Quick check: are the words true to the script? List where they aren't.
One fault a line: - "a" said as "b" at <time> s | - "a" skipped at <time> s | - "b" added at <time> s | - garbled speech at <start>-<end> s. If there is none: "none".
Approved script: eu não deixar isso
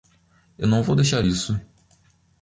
- "vou" added at 0.8 s